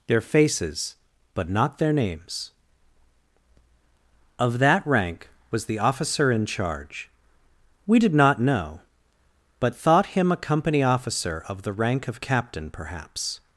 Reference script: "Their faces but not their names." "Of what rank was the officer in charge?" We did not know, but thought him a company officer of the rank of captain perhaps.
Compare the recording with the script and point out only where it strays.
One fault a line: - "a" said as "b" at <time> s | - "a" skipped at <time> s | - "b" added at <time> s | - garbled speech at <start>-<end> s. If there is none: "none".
- "what" said as "that" at 4.6 s